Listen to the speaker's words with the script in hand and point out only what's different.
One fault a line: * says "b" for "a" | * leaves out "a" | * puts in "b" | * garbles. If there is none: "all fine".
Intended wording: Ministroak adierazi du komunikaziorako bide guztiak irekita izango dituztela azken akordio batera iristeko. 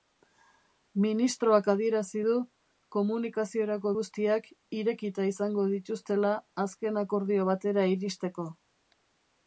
* leaves out "bide"